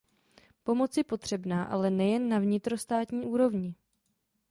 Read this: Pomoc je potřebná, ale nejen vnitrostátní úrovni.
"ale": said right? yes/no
yes